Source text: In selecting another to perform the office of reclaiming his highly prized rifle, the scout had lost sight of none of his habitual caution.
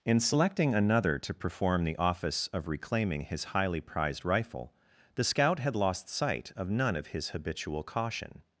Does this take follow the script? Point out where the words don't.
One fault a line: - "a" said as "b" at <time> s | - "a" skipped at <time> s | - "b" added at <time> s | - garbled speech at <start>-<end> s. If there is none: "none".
none